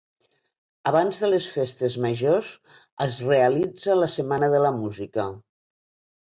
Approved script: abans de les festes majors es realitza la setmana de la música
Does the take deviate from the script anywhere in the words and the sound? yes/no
no